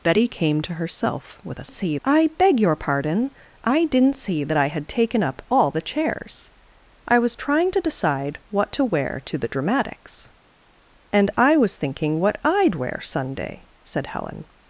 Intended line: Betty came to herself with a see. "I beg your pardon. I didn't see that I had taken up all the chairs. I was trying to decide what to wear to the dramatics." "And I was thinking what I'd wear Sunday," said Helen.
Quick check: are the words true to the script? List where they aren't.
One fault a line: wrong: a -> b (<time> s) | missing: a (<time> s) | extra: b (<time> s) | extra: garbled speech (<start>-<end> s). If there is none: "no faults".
no faults